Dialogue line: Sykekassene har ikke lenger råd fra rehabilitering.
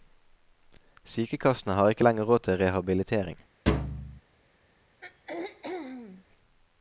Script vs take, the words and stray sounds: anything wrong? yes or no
yes